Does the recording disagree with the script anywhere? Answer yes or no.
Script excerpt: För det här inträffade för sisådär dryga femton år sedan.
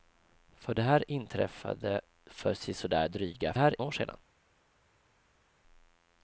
yes